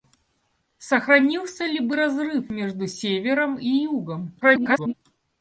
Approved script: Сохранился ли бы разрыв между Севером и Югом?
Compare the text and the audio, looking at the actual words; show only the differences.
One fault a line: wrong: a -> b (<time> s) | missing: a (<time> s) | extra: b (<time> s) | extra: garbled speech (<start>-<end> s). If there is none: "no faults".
extra: garbled speech (4.4-4.9 s)